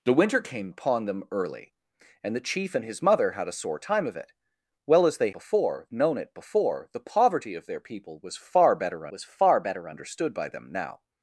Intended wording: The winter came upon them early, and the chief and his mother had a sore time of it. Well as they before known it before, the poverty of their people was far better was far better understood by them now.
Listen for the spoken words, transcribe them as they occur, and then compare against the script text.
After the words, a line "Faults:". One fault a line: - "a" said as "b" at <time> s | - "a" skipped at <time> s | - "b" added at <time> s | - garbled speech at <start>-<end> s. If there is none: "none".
The winter came upon them early, and the chief and his mother had a sore time of it. Well as they before known it before, the poverty of their people was far better was far better understood by them now.
Faults:
none